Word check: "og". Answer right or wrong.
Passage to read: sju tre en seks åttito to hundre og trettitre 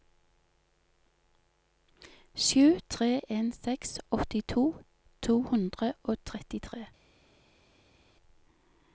right